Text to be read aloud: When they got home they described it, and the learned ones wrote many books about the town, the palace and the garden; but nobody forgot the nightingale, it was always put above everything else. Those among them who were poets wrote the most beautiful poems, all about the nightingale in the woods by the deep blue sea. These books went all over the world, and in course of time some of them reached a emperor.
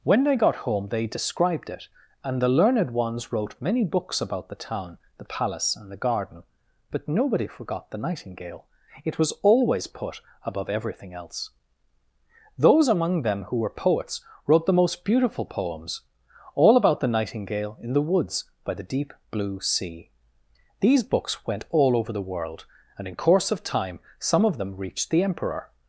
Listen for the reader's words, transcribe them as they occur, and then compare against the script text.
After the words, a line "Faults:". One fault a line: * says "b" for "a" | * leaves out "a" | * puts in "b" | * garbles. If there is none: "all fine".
When they got home they described it, and the learned ones wrote many books about the town, the palace and the garden; but nobody forgot the nightingale, it was always put above everything else. Those among them who were poets wrote the most beautiful poems, all about the nightingale in the woods by the deep blue sea. These books went all over the world, and in course of time some of them reached the emperor.
Faults:
* says "the" for "a"